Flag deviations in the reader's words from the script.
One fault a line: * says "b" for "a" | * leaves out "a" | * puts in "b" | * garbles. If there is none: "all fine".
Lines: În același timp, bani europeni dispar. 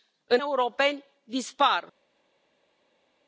* leaves out "același timp bani"